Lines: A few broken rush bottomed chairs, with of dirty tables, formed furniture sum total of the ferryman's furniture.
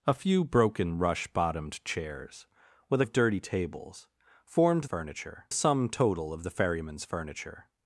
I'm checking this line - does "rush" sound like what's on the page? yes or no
yes